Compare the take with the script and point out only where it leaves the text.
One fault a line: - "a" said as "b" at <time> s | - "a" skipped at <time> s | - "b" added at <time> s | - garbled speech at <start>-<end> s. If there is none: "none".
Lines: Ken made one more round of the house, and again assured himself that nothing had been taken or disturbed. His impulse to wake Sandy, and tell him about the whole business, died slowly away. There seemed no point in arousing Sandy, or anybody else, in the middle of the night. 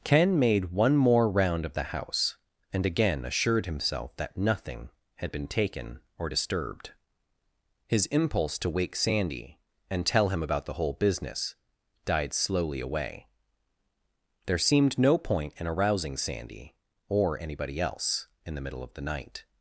none